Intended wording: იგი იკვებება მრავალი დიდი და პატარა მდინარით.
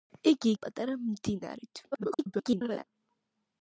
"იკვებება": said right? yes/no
no